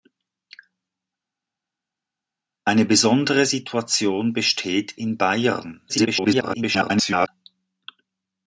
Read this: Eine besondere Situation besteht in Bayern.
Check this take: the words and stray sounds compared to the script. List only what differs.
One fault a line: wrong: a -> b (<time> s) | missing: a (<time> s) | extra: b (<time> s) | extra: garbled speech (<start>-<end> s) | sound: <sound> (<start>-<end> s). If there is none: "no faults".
extra: garbled speech (5.9-7.3 s)